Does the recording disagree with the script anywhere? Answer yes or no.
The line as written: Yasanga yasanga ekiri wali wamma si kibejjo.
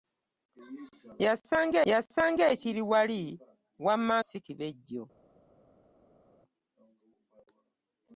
no